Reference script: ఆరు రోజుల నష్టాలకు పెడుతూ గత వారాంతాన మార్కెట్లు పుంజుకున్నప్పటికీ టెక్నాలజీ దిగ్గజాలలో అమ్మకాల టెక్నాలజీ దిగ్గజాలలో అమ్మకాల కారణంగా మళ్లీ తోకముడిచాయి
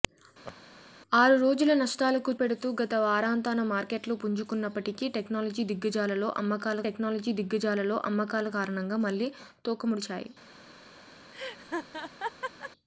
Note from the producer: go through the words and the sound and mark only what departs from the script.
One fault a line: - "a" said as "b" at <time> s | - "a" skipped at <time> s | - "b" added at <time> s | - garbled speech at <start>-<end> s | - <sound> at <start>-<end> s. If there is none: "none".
- laugh at 0.4-0.6 s
- laugh at 11.3-12.7 s